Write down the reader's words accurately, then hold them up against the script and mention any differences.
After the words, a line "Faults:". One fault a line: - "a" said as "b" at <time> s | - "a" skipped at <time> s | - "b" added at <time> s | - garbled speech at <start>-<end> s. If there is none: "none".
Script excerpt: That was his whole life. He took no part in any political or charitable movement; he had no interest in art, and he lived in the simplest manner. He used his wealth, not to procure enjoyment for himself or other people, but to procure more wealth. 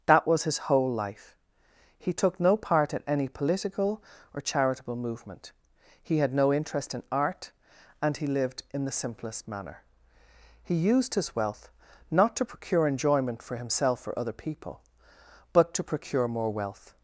That was his whole life. He took no part in any political or charitable movement; he had no interest in art, and he lived in the simplest manner. He used his wealth, not to procure enjoyment for himself or other people, but to procure more wealth.
Faults:
none